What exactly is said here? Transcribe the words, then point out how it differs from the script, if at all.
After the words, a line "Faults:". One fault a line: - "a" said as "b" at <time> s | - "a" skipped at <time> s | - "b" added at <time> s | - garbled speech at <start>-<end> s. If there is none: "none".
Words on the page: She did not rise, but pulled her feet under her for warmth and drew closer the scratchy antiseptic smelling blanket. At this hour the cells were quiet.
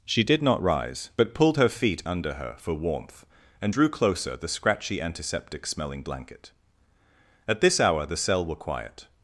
She did not rise, but pulled her feet under her for warmth and drew closer the scratchy antiseptic smelling blanket. At this hour the cell were quiet.
Faults:
- "cells" said as "cell" at 8.2 s